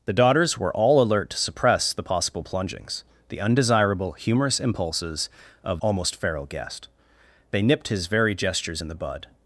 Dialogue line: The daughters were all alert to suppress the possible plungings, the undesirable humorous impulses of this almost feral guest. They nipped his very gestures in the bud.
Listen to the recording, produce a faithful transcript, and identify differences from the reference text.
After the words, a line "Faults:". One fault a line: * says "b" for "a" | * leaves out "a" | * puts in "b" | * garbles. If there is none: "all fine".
The daughters were all alert to suppress the possible plungings, the undesirable humorous impulses of almost feral guest. They nipped his very gestures in the bud.
Faults:
* leaves out "this"